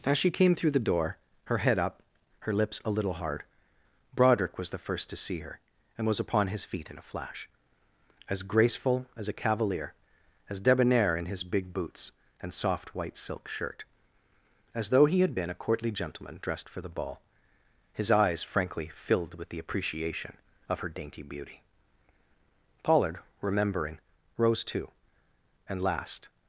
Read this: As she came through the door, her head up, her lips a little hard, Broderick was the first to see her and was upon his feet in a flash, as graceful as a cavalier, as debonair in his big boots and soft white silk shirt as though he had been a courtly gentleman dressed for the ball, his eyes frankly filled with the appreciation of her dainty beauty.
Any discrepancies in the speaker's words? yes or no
yes